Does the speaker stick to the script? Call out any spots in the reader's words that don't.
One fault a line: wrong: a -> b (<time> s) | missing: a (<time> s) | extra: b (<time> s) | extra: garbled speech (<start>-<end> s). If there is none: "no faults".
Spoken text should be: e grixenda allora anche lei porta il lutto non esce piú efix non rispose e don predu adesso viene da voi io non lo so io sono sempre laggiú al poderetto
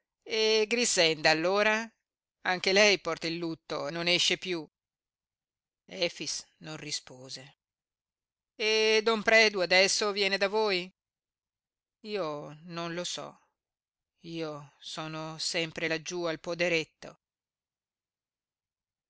no faults